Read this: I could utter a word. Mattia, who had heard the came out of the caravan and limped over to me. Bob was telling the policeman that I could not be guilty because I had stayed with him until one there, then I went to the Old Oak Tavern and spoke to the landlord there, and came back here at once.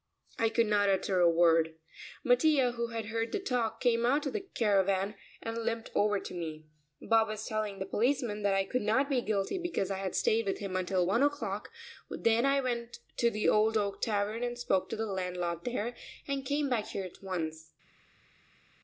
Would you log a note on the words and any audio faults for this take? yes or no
yes